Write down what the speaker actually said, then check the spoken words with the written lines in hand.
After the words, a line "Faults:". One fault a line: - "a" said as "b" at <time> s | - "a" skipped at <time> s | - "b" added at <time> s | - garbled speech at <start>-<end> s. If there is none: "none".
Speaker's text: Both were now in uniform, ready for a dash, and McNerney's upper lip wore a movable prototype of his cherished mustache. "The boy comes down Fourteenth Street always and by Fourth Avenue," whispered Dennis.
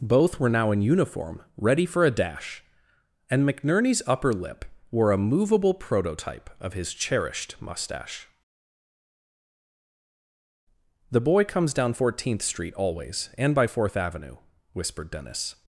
Both were now in uniform, ready for a dash, and McNerney's upper lip wore a movable prototype of his cherished mustache. "The boy comes down Fourteenth Street always and by Fourth Avenue," whispered Dennis.
Faults:
none